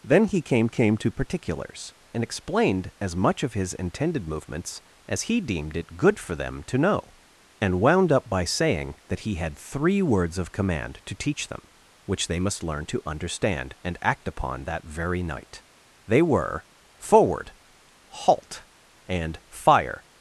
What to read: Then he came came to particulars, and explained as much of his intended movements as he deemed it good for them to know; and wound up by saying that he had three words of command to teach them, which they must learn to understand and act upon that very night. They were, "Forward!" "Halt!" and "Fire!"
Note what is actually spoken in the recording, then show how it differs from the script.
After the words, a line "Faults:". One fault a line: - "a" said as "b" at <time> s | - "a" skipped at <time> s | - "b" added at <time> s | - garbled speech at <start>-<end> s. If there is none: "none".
Then he came came to particulars, and explained as much of his intended movements as he deemed it good for them to know; and wound up by saying that he had three words of command to teach them, which they must learn to understand and act upon that very night. They were, "Forward!" "Halt!" and "Fire!"
Faults:
none